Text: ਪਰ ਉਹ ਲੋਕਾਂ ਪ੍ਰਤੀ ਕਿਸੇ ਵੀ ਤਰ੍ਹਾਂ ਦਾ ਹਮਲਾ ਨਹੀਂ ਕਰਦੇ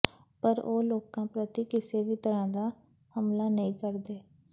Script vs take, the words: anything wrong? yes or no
no